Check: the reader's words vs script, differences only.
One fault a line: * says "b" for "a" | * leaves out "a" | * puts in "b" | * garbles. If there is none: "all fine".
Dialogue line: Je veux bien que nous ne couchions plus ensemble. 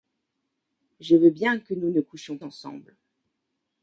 * leaves out "plus"